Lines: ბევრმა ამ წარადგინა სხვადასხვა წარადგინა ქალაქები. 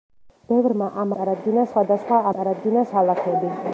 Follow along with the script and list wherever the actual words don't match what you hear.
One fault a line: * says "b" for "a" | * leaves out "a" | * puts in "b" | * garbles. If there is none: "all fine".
all fine